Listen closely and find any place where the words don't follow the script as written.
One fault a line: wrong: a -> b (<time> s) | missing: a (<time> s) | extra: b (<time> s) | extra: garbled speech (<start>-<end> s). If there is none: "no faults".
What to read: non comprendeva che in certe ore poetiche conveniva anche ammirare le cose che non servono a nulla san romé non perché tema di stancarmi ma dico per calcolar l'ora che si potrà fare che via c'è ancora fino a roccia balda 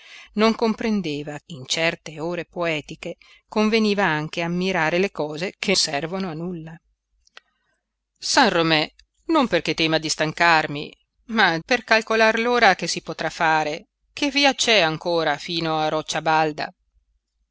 missing: che (1.4 s)
missing: non (5.7 s)
missing: dico (11.6 s)